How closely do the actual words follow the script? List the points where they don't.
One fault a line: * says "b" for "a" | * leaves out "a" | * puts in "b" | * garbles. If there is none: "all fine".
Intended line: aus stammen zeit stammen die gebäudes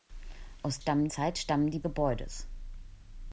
all fine